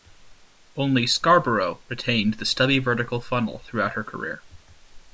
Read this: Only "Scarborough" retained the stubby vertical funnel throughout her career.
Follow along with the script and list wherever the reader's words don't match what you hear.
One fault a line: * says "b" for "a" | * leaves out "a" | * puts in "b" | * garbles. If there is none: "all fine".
all fine